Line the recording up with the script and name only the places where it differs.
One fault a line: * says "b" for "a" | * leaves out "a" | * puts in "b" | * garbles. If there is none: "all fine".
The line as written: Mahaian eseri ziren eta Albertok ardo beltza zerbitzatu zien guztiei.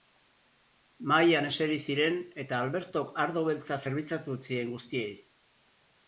all fine